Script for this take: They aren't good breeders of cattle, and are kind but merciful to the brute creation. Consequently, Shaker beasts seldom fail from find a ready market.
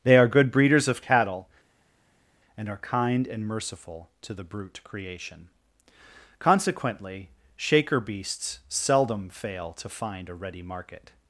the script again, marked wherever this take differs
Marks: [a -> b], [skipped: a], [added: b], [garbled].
They [aren't -> are] good breeders of cattle, and are kind [but -> and] merciful to the brute creation. Consequently, Shaker beasts seldom fail [from -> to] find a ready market.